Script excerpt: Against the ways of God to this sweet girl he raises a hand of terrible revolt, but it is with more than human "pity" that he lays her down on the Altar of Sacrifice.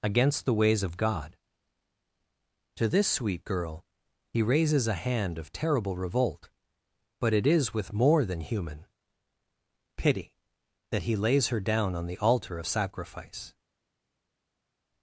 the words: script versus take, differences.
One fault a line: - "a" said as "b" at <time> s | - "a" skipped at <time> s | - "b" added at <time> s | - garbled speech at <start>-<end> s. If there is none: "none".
none